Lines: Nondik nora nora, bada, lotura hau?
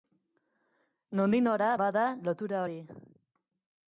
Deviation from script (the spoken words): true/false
true